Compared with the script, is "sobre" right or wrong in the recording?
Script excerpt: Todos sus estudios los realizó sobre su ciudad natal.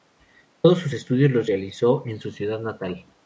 wrong